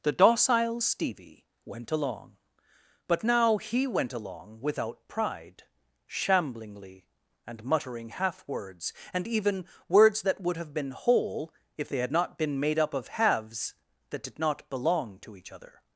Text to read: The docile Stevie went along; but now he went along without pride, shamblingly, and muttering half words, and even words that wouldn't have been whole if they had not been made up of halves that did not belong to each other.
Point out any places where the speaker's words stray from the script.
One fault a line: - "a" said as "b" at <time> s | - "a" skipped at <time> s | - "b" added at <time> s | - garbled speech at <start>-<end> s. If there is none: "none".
- "wouldn't" said as "would" at 10.4 s